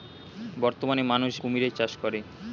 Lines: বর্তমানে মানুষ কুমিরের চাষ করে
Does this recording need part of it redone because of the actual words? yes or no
no